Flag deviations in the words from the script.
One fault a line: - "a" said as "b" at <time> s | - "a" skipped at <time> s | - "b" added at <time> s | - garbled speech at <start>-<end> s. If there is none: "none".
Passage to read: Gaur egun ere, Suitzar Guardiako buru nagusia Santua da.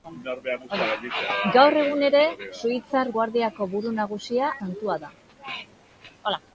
none